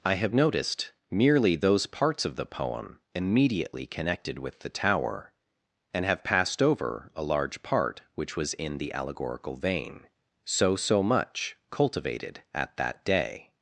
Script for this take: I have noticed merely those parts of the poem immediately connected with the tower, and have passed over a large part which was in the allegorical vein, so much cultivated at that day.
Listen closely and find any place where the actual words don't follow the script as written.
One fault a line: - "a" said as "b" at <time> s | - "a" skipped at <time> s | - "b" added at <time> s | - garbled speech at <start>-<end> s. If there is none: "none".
- "so" added at 10.7 s